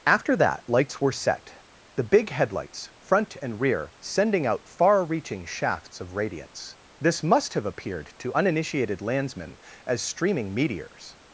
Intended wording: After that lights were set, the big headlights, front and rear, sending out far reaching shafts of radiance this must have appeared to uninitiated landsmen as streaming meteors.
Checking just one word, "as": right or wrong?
right